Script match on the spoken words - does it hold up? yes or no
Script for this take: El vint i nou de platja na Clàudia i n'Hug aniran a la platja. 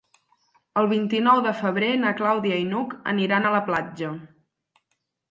no